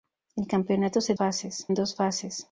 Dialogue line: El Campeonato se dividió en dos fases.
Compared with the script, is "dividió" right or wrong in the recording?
wrong